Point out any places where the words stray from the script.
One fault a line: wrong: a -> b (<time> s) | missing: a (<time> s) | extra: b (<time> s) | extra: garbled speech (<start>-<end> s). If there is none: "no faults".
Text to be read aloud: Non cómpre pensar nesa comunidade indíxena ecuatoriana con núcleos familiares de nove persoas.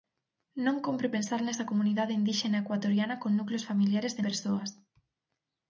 missing: nove (4.3 s)